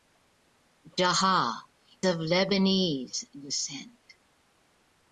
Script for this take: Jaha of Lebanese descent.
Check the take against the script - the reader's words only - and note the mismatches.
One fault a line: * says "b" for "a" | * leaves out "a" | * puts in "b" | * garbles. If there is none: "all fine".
all fine